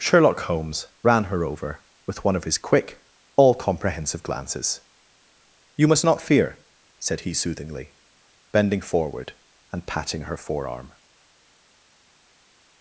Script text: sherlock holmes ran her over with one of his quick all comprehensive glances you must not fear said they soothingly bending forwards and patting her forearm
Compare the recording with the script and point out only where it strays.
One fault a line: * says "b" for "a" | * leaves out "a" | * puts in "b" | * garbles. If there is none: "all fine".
* says "he" for "they"
* says "forward" for "forwards"